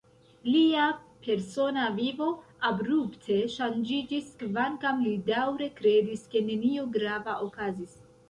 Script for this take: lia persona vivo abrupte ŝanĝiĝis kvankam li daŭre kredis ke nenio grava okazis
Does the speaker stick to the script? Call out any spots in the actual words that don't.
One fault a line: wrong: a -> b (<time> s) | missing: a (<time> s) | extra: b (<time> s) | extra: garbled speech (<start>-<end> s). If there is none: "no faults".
no faults